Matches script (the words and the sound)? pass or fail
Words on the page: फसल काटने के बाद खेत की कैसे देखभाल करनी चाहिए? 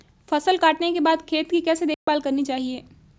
fail